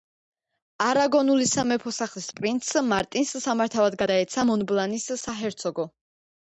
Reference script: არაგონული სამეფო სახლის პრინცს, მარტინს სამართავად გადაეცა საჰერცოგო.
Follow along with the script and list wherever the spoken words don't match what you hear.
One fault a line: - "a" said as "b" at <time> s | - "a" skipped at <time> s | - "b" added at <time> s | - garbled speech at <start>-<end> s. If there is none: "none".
- "მონბლანის" added at 4.5 s